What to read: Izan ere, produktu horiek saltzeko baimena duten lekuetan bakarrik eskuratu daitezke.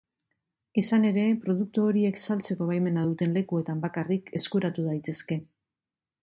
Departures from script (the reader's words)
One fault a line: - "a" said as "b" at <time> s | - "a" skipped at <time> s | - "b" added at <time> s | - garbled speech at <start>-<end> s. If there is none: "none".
none